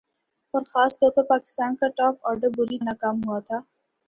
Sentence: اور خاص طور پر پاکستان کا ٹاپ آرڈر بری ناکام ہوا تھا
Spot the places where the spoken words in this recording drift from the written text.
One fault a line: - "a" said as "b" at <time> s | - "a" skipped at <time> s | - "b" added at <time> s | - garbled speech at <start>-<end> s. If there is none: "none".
none